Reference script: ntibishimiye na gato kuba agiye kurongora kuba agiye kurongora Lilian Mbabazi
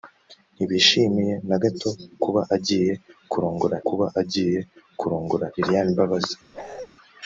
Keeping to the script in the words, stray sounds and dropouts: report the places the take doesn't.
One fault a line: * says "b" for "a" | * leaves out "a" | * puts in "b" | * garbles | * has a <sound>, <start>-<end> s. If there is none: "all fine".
* has a bark, 6.5-6.9 s